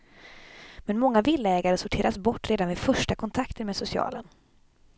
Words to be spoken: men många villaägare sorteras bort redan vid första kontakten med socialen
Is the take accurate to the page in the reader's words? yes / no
yes